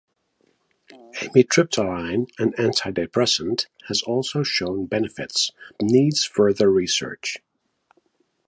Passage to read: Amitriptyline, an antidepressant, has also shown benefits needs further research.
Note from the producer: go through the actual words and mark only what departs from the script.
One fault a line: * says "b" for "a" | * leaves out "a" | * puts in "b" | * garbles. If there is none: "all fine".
all fine